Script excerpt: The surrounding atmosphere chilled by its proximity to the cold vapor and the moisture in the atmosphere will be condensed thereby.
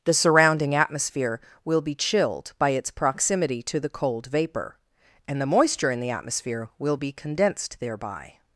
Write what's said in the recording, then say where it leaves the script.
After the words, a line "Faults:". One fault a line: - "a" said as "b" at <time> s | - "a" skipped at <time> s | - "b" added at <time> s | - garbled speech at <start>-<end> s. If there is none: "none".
The surrounding atmosphere will be chilled by its proximity to the cold vapor and the moisture in the atmosphere will be condensed thereby.
Faults:
- "will be" added at 1.6 s